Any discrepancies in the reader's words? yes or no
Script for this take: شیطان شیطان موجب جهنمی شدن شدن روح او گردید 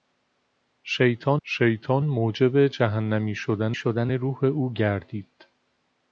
no